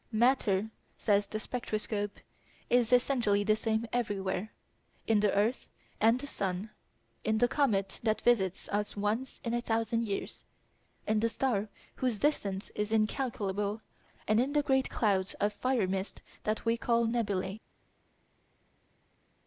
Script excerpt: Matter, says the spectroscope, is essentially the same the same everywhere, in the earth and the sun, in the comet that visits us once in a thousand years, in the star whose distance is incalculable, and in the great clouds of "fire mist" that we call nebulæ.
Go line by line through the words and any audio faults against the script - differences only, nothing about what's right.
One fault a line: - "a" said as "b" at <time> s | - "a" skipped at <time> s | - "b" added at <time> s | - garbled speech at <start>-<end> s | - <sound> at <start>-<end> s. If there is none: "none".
- "the same" skipped at 3.9 s